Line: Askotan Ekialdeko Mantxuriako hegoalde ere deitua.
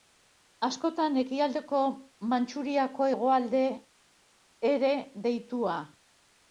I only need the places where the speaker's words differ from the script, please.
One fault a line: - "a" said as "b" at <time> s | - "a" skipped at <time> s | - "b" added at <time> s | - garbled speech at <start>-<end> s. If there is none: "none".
none